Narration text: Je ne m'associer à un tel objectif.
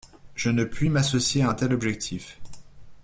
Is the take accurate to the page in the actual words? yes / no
no